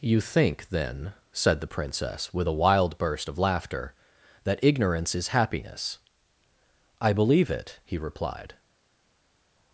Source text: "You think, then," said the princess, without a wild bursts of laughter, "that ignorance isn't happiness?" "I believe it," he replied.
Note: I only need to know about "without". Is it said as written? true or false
false